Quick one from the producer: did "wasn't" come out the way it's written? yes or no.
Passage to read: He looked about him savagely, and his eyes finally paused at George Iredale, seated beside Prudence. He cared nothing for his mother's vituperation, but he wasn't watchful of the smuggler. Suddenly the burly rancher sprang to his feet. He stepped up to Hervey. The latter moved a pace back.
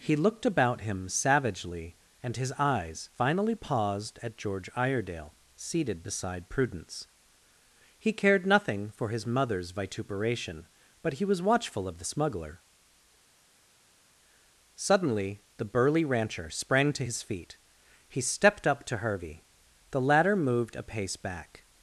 no